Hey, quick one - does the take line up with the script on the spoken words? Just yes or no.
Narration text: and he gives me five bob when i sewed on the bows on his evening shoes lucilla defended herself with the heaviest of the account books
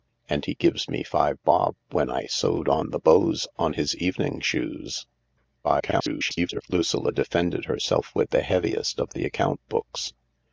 no